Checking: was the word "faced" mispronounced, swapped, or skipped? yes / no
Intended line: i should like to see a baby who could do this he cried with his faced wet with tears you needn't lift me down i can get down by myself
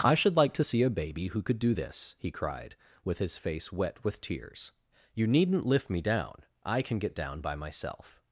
yes